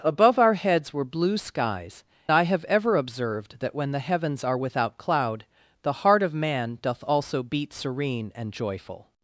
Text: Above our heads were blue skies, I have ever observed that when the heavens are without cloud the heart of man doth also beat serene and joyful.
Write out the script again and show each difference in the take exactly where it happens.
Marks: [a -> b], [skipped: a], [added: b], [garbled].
Above our heads were blue skies, I have ever observed that when the heavens are without cloud the heart of man doth also beat serene and joyful.